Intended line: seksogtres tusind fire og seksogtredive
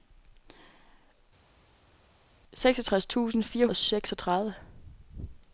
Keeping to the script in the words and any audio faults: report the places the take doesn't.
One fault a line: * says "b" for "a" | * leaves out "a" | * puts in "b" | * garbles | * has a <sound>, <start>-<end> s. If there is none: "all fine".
all fine